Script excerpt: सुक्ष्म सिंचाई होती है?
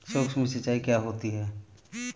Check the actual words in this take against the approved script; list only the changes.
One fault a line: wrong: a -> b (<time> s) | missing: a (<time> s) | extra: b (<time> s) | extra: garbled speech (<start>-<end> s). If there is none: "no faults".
extra: क्या (0.8 s)